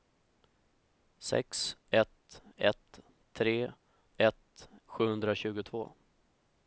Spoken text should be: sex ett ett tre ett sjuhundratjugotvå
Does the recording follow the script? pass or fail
pass